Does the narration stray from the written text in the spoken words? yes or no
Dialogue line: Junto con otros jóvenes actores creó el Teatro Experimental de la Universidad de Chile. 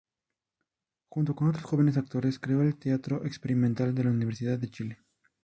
no